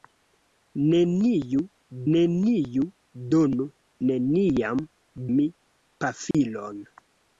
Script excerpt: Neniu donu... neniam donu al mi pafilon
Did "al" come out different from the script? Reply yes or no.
yes